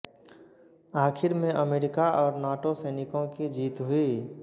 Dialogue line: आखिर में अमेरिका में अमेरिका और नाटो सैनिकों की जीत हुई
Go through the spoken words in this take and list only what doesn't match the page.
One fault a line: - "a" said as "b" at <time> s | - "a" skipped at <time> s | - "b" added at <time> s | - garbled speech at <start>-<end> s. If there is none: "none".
- "में अमेरिका" skipped at 2.1 s